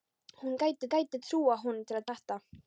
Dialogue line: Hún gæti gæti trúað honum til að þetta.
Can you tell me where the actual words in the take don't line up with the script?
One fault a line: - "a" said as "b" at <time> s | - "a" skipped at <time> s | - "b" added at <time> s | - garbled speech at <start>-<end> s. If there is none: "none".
none